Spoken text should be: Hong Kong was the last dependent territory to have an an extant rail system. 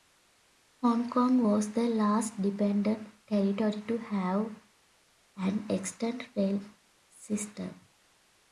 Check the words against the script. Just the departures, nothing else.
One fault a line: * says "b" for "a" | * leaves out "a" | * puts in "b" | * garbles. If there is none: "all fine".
* leaves out "an"